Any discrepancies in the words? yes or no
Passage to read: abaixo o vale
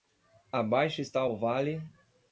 yes